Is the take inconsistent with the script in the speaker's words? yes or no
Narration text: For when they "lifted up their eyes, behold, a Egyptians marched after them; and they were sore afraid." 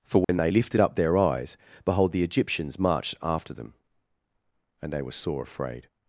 yes